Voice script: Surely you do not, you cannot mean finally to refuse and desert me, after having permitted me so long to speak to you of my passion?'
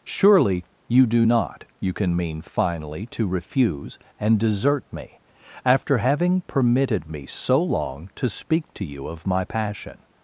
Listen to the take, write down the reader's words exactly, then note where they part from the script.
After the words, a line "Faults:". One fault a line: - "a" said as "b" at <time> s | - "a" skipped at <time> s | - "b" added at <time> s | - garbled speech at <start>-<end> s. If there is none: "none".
Surely you do not, you can mean finally to refuse and desert me, after having permitted me so long to speak to you of my passion?'
Faults:
- "cannot" said as "can" at 1.9 s